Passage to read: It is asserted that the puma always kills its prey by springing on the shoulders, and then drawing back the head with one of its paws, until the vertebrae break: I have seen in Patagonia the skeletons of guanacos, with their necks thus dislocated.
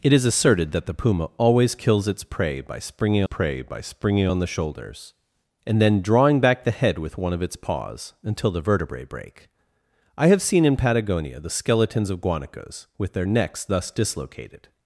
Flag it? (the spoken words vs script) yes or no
yes